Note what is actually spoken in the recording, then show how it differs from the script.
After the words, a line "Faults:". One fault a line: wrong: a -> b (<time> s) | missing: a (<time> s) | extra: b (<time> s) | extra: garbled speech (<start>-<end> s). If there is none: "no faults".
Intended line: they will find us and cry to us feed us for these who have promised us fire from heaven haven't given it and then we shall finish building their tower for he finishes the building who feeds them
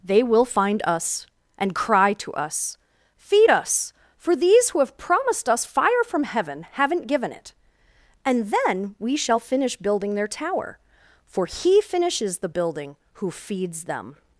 they will find us and cry to us feed us for these who have promised us fire from heaven haven't given it and then we shall finish building their tower for he finishes the building who feeds them
Faults:
no faults